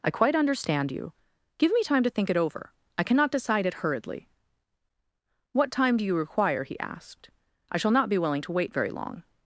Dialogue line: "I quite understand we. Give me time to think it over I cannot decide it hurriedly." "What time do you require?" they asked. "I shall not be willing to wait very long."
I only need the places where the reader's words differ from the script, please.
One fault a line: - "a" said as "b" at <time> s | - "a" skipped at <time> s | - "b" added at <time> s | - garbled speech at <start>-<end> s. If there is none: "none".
- "we" said as "you" at 0.9 s
- "they" said as "he" at 6.6 s